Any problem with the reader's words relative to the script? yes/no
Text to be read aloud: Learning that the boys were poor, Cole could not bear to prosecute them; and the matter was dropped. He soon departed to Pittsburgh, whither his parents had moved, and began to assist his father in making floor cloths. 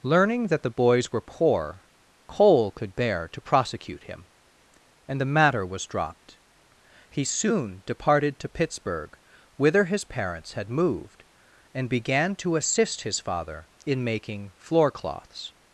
yes